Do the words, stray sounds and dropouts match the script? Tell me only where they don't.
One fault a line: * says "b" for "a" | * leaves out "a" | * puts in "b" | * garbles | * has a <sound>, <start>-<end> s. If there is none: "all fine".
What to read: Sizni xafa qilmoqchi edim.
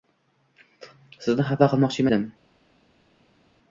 all fine